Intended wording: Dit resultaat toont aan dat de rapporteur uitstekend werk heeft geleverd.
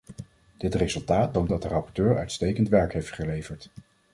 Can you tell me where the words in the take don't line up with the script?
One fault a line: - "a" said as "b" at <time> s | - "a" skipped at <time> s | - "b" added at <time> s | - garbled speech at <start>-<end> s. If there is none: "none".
- "aan" skipped at 1.5 s